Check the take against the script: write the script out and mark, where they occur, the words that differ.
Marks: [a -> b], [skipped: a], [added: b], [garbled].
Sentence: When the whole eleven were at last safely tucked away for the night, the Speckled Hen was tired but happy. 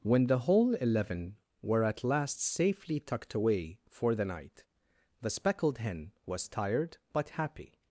When the whole eleven were at last safely tucked away for the night, the Speckled Hen was tired but happy.